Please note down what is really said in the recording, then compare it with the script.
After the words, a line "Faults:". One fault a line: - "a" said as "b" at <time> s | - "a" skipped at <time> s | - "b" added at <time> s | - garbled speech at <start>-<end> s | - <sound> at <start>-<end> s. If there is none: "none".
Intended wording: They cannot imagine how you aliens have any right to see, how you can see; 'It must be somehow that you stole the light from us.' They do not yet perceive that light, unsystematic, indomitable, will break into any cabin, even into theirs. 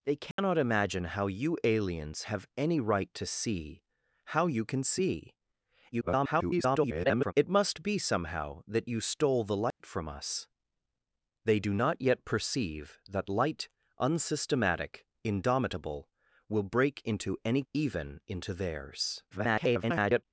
They cannot imagine how you aliens have any right to see, how you can see; [garbled] 'It must be somehow that you stole the light from us.' They do not yet perceive that light, unsystematic, indomitable, will break into any even into theirs. [garbled]
Faults:
- dropout at 0.3-0.4 s
- garbled speech at 5.9-7.3 s
- dropout at 9.7-9.8 s
- "cabin" skipped at 17.6 s
- garbled speech at 19.3-20.2 s